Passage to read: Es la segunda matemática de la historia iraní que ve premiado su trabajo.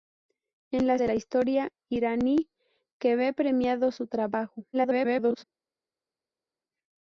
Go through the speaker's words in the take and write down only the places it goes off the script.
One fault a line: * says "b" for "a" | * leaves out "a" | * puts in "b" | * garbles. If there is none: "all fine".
* leaves out "segunda matemática"
* garbles